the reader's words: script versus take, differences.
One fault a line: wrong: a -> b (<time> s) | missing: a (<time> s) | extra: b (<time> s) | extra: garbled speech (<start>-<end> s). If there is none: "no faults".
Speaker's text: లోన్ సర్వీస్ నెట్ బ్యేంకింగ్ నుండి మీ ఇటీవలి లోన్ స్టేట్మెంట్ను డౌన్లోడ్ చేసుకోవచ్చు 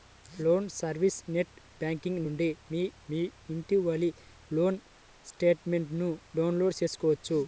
extra: మీ (3.1 s)